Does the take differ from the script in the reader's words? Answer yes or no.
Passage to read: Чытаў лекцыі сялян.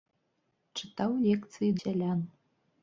no